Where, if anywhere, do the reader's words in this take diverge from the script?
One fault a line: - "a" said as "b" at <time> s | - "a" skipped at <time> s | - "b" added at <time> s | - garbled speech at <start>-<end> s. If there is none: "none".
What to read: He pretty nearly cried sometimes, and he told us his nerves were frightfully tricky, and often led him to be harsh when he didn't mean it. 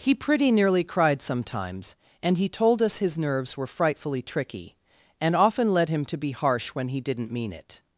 none